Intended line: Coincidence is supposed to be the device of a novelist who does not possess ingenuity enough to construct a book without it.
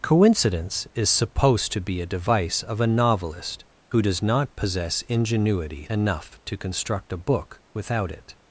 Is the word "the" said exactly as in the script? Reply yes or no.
no